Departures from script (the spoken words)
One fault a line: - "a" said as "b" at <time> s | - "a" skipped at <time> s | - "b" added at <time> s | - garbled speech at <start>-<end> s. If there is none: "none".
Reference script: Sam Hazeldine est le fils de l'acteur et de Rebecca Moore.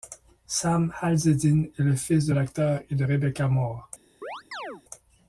none